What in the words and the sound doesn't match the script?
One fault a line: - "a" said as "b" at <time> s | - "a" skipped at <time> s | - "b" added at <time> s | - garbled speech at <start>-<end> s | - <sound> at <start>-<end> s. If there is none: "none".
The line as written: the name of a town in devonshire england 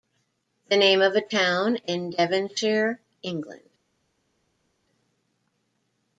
none